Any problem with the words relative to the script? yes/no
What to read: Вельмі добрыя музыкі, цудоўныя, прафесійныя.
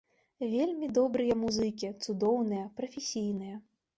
no